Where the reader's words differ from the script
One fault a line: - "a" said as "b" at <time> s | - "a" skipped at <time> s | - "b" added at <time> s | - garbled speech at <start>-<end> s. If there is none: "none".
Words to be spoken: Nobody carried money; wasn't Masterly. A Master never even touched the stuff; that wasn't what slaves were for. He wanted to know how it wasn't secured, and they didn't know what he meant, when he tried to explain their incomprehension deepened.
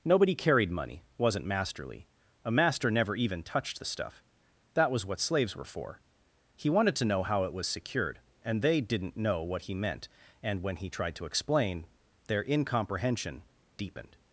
- "wasn't" said as "was" at 4.9 s
- "wasn't" said as "was" at 7.5 s
- "and" added at 10.4 s